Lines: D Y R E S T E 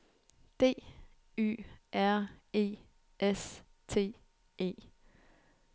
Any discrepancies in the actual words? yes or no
no